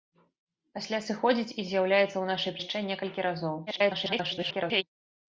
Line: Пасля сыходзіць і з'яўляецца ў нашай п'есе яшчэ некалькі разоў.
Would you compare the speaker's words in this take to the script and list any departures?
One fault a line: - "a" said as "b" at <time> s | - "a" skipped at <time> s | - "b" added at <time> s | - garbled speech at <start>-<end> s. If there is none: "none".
- "п'есе" skipped at 2.5 s
- garbled speech at 3.7-4.8 s